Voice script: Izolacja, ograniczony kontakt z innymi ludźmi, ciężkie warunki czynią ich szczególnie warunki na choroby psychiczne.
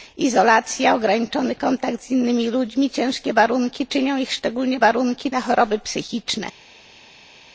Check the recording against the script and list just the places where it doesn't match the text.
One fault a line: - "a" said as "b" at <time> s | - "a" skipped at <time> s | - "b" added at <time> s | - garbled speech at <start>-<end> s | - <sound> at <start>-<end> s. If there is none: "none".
none